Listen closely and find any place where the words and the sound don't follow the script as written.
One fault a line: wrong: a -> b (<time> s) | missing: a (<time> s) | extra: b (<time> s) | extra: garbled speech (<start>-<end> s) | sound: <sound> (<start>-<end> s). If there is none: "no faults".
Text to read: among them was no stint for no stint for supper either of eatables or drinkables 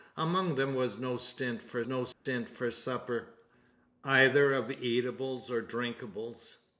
sound: dropout (2.1-2.3 s)